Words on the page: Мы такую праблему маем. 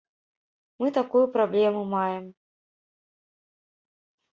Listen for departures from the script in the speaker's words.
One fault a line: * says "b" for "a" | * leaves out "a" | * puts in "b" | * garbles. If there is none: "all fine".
all fine